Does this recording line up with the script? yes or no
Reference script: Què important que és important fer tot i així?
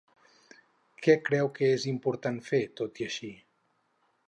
no